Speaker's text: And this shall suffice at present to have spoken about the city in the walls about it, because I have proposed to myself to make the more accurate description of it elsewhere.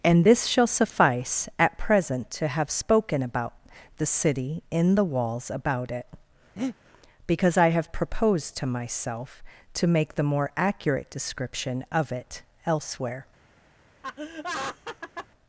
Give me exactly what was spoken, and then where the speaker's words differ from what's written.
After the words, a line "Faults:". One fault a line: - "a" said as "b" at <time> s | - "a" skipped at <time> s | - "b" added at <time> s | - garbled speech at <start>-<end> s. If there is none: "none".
And this shall suffice at present to have spoken about the city in the walls about it, because I have proposed to myself to make the more accurate description of it elsewhere.
Faults:
none